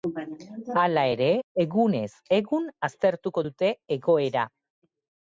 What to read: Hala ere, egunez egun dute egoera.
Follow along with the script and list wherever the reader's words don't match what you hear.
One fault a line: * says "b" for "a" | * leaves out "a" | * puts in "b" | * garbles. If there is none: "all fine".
* puts in "aztertuko"